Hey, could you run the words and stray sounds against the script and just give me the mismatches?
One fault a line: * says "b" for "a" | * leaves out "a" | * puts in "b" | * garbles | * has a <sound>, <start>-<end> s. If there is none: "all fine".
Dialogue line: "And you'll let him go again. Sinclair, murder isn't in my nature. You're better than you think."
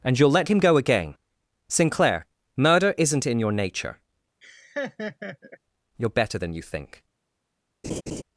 * says "your" for "my"
* has a laugh, 4.4-5.6 s
* has a laugh, 7.8-8.2 s